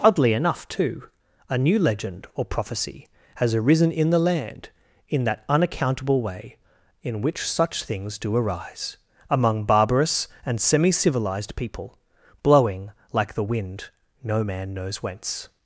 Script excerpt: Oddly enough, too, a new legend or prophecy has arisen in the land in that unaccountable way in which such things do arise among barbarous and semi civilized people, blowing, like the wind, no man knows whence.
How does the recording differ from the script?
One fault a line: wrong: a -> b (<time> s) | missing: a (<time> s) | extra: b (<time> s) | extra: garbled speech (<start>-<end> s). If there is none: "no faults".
no faults